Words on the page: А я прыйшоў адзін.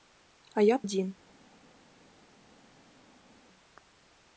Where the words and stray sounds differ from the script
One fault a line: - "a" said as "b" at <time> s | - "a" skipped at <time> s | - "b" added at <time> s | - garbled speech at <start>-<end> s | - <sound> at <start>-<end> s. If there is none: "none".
- "прыйшоў" skipped at 0.8 s